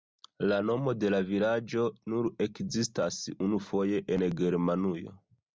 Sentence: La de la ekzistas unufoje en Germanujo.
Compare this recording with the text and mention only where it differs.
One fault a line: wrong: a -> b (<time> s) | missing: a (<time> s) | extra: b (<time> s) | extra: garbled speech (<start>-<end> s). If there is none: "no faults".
extra: nomo (0.7 s)
extra: vilaĝo nur (1.3 s)